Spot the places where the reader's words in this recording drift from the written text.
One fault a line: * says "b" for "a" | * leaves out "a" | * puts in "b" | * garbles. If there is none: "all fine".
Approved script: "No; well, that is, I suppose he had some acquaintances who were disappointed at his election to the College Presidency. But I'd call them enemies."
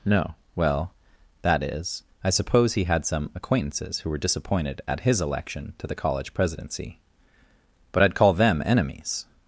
all fine